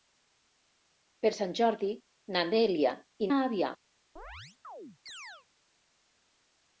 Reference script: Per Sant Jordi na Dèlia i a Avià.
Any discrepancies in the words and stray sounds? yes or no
yes